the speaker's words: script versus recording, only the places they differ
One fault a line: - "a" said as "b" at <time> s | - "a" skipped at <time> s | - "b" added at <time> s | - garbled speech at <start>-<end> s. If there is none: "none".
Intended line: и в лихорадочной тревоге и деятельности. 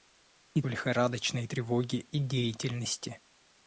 none